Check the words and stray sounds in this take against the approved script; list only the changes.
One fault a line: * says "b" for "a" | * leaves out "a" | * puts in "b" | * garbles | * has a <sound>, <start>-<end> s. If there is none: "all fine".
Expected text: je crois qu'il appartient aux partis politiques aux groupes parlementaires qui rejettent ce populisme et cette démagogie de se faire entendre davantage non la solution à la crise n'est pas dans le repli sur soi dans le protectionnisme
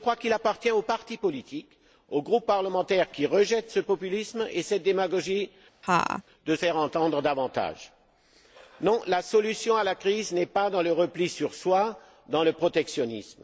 * has a laugh, 5.8-6.2 s
* leaves out "se"